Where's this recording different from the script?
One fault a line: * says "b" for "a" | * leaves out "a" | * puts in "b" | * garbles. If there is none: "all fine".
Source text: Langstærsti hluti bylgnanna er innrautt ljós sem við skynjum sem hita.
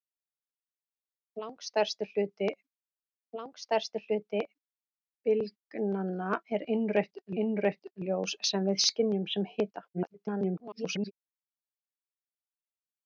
* puts in "langstærsti hluti"
* puts in "innrautt"
* garbles